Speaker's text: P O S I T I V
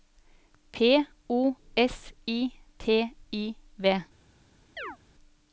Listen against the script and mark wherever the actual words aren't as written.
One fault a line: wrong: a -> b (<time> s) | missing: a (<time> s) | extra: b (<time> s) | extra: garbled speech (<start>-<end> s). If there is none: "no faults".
no faults